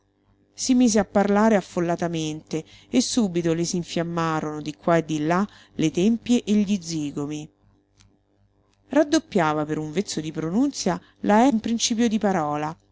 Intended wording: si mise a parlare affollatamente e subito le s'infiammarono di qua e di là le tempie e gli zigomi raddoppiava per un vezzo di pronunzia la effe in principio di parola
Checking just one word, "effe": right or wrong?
wrong